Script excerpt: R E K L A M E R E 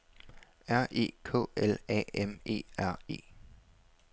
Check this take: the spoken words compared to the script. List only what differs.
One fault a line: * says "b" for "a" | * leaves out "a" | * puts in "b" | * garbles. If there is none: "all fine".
all fine